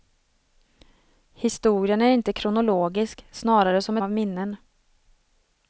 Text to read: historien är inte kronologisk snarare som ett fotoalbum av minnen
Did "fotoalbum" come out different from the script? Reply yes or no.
yes